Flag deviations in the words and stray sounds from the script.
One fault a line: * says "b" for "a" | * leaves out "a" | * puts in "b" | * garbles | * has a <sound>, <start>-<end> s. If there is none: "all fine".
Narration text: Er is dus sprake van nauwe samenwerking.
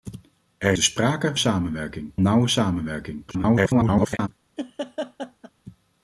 * leaves out "is"
* says "samenwerking" for "van"
* garbles
* has a laugh, 4.6-5.5 s